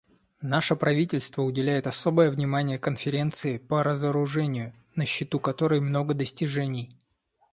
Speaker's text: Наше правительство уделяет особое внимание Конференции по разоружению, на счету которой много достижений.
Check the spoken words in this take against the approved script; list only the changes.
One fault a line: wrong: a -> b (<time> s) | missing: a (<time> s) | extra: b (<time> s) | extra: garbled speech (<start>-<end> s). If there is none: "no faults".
no faults